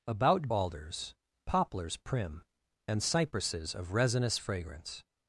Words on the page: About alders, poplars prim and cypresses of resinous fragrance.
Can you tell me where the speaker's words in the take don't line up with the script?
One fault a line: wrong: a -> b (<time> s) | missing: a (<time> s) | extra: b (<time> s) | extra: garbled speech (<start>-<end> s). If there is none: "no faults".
no faults